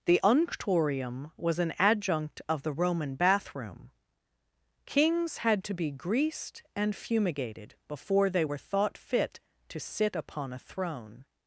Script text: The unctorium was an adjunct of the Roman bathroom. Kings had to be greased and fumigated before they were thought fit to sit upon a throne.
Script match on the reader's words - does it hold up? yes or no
yes